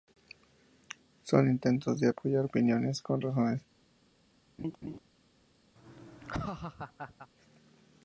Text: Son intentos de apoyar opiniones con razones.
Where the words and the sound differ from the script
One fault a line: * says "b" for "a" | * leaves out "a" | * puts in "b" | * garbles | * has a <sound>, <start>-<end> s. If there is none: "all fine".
* has a laugh, 4.6-5.0 s
* has a laugh, 5.8-7.3 s